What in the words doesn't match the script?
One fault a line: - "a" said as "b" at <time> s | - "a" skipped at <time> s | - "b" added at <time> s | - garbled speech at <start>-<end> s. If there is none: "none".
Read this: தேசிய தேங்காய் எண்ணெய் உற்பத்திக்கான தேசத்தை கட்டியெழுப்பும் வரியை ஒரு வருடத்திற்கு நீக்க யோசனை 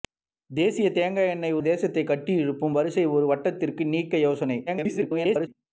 - "உற்பத்திக்கான" skipped at 1.6 s
- garbled speech at 4.7-5.5 s